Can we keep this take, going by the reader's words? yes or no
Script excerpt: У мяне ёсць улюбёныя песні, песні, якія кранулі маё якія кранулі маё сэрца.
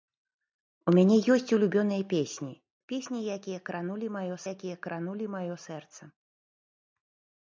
yes